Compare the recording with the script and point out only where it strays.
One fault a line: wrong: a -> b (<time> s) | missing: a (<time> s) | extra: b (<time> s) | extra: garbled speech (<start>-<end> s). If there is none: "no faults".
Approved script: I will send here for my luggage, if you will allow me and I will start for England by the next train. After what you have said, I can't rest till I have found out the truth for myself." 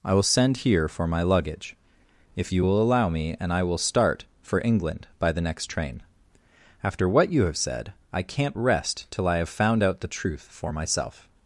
no faults